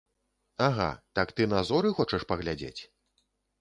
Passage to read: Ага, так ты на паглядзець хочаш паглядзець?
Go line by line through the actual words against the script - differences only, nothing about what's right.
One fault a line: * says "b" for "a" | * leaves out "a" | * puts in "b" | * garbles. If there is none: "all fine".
* says "зоры" for "паглядзець"